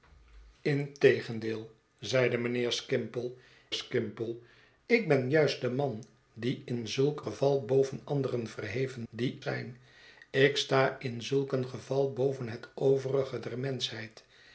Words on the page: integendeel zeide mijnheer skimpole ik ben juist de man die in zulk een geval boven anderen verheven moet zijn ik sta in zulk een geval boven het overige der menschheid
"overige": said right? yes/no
yes